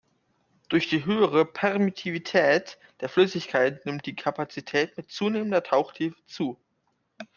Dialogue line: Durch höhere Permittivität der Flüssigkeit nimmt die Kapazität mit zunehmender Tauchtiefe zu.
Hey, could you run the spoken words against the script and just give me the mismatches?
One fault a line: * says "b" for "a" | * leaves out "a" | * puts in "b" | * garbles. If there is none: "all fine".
* puts in "die"